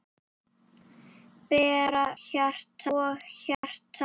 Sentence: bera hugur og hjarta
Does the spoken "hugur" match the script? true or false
false